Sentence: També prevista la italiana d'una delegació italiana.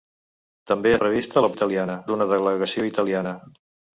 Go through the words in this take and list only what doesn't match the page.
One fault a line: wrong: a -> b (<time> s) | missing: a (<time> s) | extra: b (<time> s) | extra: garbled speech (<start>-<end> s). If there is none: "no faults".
no faults